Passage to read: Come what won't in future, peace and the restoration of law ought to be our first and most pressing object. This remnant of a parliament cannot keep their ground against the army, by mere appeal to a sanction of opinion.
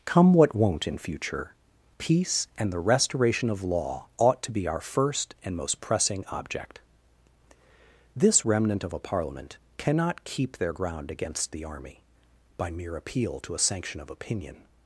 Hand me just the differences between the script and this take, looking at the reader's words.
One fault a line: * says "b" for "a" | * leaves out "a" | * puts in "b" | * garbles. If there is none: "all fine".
all fine